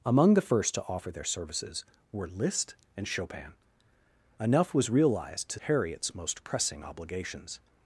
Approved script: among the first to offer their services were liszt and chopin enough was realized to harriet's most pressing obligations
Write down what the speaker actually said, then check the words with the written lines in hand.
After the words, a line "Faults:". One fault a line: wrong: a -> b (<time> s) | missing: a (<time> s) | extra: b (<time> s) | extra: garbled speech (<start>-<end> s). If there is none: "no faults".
among the first to offer their services were liszt and chopin enough was realized to harriet's most pressing obligations
Faults:
no faults